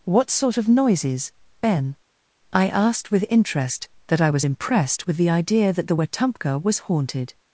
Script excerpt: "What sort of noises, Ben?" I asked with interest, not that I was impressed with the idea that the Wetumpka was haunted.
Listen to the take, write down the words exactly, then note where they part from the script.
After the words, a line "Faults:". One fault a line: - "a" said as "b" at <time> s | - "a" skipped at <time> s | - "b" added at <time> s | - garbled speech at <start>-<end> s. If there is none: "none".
"What sort of noises, Ben?" I asked with interest, that I was impressed with the idea that the Wetumpka was haunted.
Faults:
- "not" skipped at 3.9 s